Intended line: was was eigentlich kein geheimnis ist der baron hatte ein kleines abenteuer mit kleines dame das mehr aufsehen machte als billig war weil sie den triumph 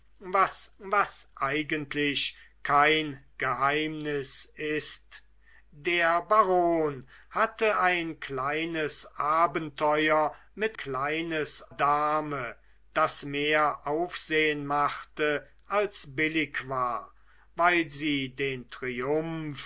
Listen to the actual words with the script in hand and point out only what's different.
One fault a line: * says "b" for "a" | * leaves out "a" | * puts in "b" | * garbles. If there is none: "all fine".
all fine